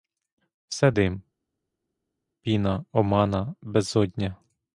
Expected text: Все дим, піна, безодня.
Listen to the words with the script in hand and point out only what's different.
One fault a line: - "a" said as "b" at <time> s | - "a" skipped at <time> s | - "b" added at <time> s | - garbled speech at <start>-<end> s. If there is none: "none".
- "омана" added at 2.9 s